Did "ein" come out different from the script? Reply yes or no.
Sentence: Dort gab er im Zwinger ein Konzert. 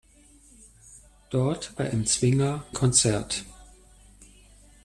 yes